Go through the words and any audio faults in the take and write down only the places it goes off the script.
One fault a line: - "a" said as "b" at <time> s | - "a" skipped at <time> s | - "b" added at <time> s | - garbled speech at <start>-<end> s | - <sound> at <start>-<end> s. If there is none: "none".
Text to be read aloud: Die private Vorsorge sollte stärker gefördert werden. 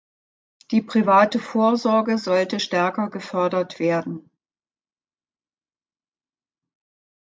none